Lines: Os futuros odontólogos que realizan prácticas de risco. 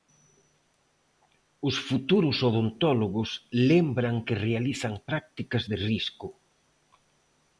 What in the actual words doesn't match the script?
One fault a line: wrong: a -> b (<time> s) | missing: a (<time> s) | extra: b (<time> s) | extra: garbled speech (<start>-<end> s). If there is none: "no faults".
extra: lembran (3.7 s)